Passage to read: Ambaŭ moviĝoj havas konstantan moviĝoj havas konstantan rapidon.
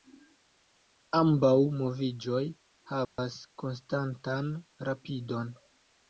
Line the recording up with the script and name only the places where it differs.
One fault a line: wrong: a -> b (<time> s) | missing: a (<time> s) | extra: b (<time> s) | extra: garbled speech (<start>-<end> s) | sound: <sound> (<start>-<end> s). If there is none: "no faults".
sound: dropout (3.0-3.2 s)
missing: moviĝoj havas konstantan (4.5 s)